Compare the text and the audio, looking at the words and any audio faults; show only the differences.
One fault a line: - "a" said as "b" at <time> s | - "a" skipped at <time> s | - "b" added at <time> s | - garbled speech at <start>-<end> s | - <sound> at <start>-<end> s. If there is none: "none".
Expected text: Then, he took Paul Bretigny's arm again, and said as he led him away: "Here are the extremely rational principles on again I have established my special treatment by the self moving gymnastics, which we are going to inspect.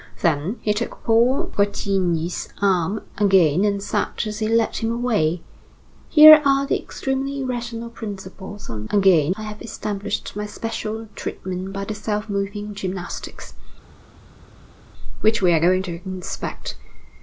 none